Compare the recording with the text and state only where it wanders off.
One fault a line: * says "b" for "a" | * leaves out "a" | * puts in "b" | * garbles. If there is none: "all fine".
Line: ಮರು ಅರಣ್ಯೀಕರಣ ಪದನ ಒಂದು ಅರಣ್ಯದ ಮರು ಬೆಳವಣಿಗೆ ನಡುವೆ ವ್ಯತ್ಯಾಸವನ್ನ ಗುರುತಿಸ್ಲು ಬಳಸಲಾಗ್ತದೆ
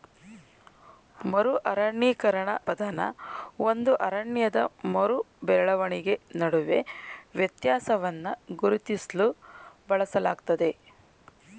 all fine